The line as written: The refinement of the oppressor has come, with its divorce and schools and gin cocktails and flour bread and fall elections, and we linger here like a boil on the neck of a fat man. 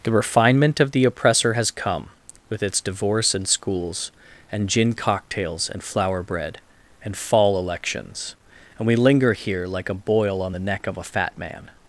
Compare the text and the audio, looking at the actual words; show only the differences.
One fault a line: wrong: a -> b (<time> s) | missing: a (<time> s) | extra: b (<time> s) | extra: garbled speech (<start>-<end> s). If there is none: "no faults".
no faults